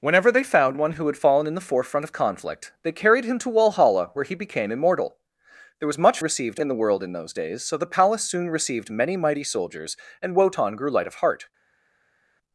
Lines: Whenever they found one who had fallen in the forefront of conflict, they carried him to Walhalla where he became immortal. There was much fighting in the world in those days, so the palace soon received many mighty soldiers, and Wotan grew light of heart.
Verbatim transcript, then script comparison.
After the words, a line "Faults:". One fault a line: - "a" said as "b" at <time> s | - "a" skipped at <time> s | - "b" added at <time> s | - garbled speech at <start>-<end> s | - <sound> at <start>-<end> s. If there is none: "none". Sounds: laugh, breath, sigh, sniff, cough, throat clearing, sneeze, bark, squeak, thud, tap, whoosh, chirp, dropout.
Whenever they found one who had fallen in the forefront of conflict, they carried him to Walhalla where he became immortal. There was much received in the world in those days, so the palace soon received many mighty soldiers, and Wotan grew light of heart.
Faults:
- "fighting" said as "received" at 6.2 s